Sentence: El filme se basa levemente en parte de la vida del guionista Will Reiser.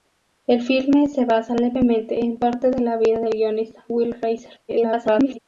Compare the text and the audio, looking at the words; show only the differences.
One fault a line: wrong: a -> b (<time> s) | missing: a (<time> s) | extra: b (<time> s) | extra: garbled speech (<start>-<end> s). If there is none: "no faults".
extra: garbled speech (4.7-5.4 s)